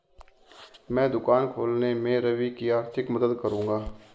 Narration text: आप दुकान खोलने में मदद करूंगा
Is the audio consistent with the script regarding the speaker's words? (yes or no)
no